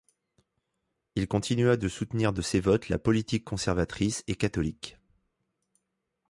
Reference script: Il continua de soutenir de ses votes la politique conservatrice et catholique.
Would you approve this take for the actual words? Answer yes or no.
yes